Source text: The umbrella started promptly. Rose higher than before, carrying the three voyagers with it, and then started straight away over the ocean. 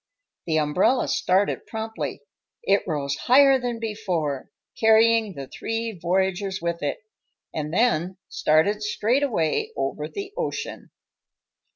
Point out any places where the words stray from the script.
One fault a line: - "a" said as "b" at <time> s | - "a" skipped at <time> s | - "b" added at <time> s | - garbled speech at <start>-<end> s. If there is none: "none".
- "It" added at 2.6 s